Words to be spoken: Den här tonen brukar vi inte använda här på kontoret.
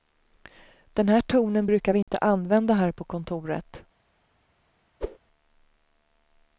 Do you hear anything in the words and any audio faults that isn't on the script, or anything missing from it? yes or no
yes